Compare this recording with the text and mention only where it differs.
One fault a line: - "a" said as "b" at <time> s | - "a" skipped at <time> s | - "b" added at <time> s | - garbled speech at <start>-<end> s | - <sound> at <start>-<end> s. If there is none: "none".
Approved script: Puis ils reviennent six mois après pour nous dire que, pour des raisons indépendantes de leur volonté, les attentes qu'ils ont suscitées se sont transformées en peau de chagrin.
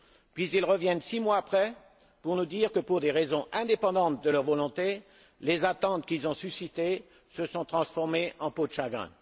none